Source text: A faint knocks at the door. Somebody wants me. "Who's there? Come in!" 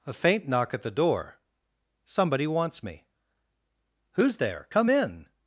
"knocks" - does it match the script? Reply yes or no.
no